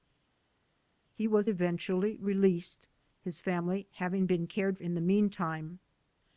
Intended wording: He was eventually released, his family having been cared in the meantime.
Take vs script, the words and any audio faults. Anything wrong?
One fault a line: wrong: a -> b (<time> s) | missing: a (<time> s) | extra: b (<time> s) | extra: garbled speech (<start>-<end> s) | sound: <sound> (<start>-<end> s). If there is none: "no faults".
no faults